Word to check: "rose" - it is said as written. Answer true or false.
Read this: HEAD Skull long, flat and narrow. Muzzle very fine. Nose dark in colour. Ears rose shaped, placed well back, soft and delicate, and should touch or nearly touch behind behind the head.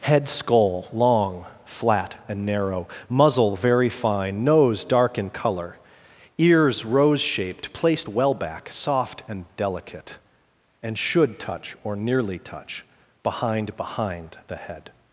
true